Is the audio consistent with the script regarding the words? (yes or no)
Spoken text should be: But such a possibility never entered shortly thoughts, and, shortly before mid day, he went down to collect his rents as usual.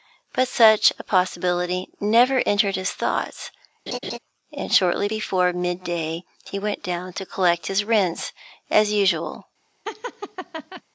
no